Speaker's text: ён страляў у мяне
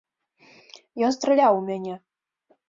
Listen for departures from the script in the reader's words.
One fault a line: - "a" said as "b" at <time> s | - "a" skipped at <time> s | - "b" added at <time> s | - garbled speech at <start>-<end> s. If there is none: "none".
none